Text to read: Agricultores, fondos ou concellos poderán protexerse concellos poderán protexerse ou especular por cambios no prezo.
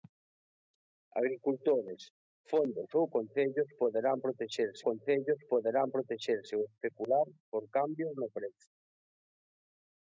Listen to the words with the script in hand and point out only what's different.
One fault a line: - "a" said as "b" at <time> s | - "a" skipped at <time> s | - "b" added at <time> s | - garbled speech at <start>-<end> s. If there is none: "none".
none